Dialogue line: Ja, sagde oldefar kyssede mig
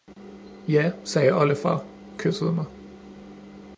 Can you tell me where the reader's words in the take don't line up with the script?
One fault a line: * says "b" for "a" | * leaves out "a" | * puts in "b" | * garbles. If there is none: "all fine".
all fine